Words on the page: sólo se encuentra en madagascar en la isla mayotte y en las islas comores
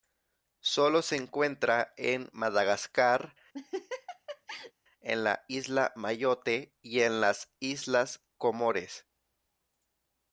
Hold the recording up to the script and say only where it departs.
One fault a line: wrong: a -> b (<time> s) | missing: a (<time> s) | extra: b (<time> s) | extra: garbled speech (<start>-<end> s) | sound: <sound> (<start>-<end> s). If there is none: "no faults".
sound: laugh (3.5-4.7 s)